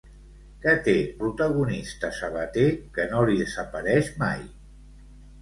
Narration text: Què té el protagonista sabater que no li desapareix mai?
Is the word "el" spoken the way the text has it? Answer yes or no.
no